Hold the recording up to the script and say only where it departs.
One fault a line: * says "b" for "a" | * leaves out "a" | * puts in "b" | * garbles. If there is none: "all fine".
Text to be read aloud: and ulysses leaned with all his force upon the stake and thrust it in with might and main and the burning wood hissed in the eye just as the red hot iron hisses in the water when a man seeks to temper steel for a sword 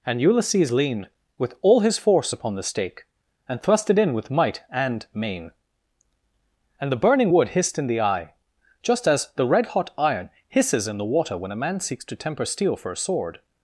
all fine